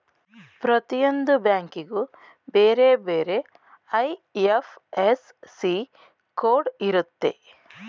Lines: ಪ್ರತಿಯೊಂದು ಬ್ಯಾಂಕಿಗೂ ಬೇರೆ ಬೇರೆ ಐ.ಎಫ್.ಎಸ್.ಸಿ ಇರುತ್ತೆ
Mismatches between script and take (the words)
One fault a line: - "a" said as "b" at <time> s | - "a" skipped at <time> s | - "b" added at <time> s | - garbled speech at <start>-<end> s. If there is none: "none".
- "ಕೋಡ್" added at 6.4 s